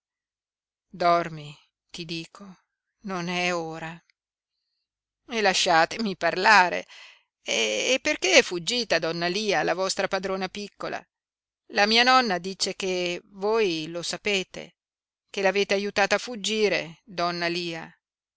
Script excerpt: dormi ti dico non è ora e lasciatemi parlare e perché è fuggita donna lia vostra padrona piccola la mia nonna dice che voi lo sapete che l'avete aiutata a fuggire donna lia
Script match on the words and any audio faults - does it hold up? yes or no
no